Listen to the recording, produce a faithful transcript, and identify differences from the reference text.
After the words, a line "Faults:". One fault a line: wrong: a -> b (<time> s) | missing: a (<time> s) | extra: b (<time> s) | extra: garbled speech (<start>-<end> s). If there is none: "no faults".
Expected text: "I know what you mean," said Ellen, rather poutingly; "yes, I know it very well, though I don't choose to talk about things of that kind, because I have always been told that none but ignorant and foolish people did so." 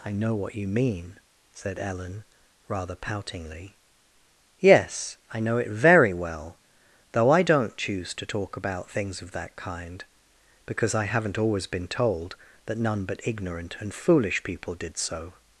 "I know what you mean," said Ellen, rather poutingly; "yes, I know it very well, though I don't choose to talk about things of that kind, because I haven't always been told that none but ignorant and foolish people did so."
Faults:
wrong: have -> haven't (11.1 s)